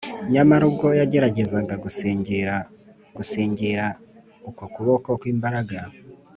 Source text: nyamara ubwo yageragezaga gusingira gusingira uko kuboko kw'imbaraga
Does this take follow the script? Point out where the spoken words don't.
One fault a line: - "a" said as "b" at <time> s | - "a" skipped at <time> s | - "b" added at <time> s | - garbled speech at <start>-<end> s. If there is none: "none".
none